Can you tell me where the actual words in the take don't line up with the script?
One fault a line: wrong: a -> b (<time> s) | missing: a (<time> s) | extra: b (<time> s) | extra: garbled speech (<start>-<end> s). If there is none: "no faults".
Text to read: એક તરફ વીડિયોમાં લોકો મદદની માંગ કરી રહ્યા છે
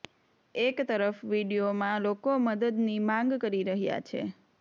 no faults